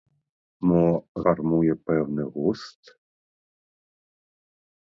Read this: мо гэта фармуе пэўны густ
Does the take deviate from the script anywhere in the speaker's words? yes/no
yes